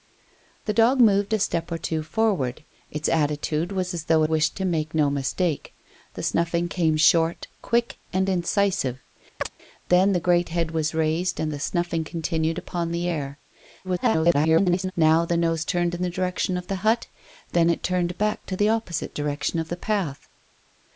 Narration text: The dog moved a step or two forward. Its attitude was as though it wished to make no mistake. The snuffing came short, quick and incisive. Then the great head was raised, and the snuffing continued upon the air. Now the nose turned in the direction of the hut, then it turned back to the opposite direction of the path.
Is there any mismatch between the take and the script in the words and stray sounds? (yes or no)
yes